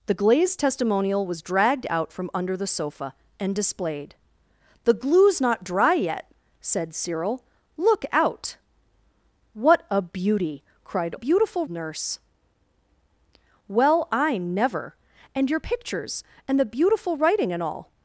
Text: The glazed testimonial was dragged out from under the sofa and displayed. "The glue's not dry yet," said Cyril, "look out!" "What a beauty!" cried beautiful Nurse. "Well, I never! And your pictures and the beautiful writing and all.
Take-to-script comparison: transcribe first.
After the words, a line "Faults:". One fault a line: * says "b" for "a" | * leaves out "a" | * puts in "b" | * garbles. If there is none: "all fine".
The glazed testimonial was dragged out from under the sofa and displayed. "The glue's not dry yet," said Cyril, "look out!" "What a beauty!" cried beautiful Nurse. "Well, I never! And your pictures and the beautiful writing and all.
Faults:
all fine